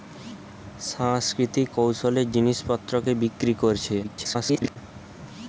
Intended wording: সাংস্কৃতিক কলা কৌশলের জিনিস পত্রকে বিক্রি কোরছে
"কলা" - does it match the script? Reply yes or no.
no